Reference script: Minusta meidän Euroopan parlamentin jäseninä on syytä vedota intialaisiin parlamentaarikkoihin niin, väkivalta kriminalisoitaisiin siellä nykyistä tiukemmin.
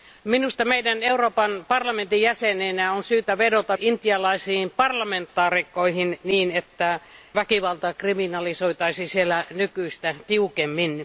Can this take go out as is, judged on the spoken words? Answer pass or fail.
pass